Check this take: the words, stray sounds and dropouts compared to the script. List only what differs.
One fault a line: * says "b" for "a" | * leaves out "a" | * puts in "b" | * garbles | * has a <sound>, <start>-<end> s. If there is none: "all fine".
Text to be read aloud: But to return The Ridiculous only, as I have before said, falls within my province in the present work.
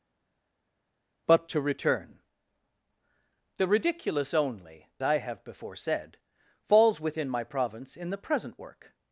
* leaves out "as"